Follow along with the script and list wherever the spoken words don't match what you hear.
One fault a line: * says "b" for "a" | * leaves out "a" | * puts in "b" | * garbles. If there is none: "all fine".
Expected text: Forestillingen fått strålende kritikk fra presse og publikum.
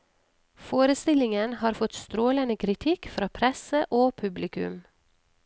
* puts in "har"